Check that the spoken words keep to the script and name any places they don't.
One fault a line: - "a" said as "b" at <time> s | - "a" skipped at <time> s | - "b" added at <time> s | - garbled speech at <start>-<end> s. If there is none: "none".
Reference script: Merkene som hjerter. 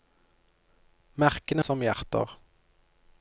none